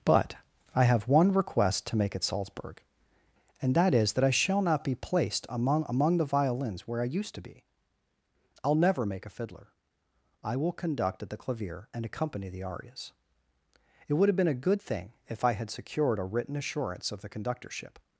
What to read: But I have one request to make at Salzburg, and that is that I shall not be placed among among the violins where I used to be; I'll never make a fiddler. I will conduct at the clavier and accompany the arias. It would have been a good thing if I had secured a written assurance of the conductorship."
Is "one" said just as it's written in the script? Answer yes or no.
yes